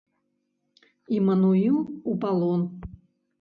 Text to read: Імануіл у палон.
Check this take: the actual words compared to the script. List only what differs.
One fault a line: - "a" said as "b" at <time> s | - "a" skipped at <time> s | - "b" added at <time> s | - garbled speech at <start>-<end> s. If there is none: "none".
none